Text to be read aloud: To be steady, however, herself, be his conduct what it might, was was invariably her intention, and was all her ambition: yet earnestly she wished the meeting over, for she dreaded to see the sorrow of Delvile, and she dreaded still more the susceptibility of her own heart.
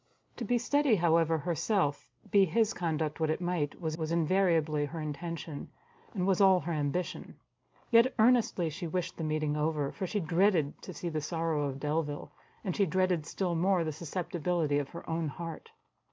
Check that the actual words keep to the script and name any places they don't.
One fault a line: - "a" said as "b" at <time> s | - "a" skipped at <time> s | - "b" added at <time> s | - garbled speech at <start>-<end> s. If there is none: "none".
none